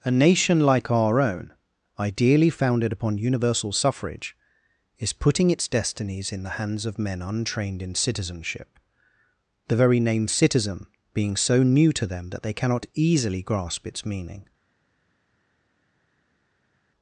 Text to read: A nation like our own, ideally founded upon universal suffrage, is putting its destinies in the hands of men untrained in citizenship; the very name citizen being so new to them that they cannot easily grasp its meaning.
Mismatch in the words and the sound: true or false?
false